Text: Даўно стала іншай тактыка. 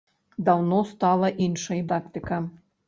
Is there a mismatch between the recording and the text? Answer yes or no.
no